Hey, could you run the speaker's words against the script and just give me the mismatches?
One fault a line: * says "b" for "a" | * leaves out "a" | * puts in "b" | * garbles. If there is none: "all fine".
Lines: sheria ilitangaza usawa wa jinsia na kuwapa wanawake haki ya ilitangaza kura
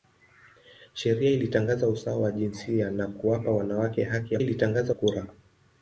all fine